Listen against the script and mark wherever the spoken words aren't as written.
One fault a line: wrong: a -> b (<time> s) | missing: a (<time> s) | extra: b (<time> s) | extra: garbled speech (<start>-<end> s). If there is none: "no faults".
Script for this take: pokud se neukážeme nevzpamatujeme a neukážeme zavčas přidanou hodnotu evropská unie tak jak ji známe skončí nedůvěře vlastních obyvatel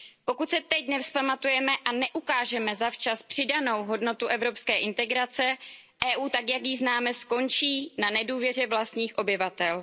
wrong: neukážeme -> teď (0.6 s)
extra: evropské integrace (4.3 s)
extra: na (8.0 s)